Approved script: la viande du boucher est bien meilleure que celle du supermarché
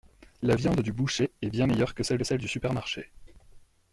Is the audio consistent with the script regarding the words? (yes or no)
no